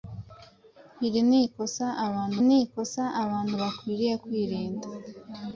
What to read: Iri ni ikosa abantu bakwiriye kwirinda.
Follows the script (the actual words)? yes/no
no